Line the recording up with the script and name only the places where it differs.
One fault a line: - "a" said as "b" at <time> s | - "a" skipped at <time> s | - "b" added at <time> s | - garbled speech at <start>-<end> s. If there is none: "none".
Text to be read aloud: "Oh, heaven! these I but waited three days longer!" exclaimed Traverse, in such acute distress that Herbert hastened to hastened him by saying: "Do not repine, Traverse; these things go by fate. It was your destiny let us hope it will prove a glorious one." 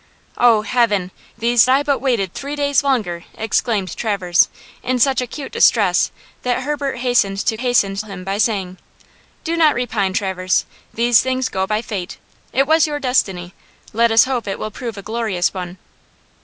none